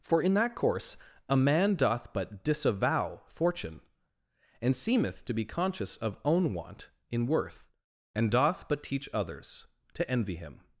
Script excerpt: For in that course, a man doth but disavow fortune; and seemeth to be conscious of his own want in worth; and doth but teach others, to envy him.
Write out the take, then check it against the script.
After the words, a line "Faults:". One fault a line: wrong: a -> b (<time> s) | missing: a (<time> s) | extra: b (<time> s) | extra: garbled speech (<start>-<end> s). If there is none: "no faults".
For in that course, a man doth but disavow fortune; and seemeth to be conscious of own want in worth; and doth but teach others, to envy him.
Faults:
missing: his (6.2 s)